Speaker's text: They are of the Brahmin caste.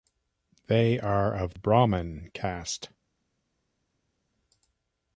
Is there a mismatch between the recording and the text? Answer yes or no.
yes